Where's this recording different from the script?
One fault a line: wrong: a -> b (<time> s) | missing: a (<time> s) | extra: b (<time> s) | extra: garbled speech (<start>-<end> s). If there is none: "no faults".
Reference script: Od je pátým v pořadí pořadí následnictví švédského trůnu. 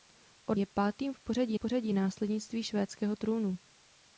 no faults